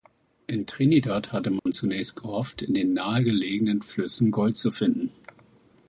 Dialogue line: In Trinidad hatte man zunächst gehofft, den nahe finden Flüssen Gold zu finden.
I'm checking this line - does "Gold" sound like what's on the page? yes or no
yes